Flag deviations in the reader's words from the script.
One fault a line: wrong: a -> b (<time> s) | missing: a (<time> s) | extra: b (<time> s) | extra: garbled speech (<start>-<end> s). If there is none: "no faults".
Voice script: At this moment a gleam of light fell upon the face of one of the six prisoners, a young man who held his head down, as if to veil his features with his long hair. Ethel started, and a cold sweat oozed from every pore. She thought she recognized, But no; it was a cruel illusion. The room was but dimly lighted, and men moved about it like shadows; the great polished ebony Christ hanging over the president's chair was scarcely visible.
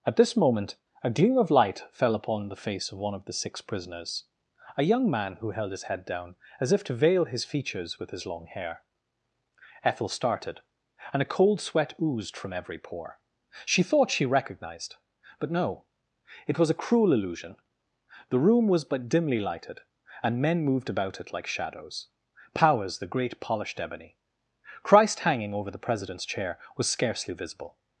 extra: powers (22.5 s)